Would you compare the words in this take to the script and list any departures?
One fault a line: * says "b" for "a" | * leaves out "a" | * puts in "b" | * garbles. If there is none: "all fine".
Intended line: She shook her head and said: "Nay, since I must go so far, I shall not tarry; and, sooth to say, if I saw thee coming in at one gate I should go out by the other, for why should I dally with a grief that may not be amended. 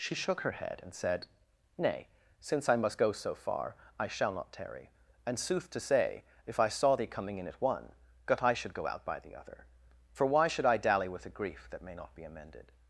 * says "gut" for "gate"